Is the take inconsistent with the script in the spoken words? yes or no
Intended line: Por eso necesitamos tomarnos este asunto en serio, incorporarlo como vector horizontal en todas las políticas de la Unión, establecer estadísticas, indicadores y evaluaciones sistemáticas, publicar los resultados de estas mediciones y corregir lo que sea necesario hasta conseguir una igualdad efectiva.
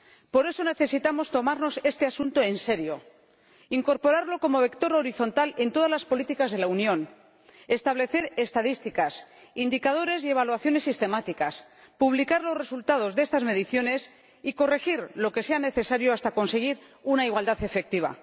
no